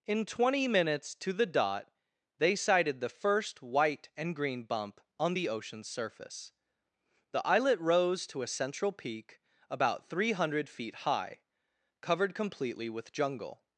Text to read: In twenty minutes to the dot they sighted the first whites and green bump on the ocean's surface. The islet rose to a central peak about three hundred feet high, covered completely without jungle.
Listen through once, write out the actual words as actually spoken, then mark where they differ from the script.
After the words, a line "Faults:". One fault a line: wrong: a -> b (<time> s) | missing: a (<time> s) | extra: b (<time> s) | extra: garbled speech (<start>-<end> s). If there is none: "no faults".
In twenty minutes to the dot they sighted the first white and green bump on the ocean's surface. The islet rose to a central peak about three hundred feet high, covered completely with jungle.
Faults:
wrong: whites -> white (3.6 s)
wrong: without -> with (12.9 s)